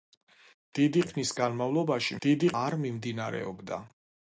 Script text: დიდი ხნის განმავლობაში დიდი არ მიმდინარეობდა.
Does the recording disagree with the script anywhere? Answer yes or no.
no